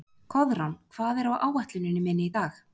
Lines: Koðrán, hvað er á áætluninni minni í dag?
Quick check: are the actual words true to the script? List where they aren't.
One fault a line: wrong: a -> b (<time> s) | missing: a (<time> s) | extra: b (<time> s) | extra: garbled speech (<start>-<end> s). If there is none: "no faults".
no faults